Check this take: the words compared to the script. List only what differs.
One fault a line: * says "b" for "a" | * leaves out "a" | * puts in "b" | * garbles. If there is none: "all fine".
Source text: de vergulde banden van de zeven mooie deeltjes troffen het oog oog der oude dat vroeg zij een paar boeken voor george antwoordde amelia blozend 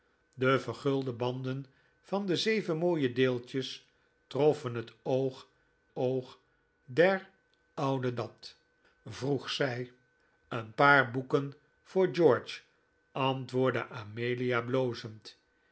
all fine